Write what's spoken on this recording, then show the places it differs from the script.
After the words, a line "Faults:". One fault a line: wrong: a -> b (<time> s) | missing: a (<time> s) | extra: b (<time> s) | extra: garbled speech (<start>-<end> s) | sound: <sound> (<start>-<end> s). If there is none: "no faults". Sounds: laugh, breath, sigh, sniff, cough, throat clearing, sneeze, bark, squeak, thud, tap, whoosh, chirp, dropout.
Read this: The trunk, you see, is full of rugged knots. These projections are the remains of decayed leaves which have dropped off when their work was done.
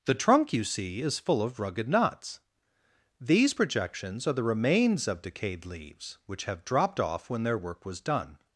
The trunk, you see, is full of rugged knots. These projections are the remains of decayed leaves which have dropped off when their work was done.
Faults:
no faults